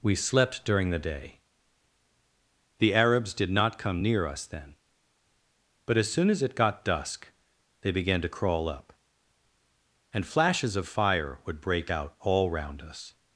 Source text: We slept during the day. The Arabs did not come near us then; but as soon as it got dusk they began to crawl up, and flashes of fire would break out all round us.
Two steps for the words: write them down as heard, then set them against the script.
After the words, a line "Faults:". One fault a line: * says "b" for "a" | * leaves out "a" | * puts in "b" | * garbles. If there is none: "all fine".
We slept during the day. The Arabs did not come near us then; but as soon as it got dusk they began to crawl up, and flashes of fire would break out all round us.
Faults:
all fine